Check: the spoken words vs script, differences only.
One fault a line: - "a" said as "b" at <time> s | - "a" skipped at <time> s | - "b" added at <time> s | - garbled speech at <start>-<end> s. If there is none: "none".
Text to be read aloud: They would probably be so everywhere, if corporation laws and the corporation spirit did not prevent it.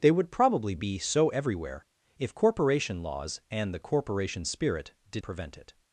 - "not" skipped at 5.2 s